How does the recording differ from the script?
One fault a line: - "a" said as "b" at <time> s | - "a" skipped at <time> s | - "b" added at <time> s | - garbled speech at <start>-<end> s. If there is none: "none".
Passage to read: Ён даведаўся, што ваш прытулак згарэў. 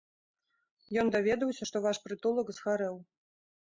none